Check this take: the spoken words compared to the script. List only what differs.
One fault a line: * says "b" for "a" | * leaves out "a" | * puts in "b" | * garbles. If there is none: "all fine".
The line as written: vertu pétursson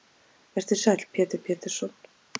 * puts in "sæll pétur"